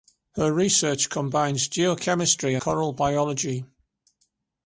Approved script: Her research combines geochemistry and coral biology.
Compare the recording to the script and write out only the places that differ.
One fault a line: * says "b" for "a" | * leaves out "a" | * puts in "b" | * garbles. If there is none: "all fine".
* leaves out "and"